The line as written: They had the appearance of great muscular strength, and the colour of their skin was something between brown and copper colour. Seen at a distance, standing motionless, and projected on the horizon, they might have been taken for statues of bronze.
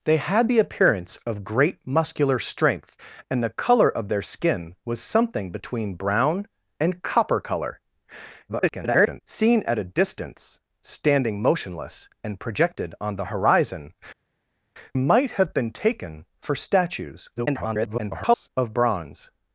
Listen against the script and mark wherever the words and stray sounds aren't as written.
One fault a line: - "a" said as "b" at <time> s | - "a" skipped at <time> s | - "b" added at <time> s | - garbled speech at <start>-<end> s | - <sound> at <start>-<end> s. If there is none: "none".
- garbled speech at 8.5-9.2 s
- "they" skipped at 13.9 s
- garbled speech at 17.4-18.5 s